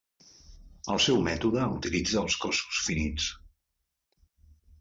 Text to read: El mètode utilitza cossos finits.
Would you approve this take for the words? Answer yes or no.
no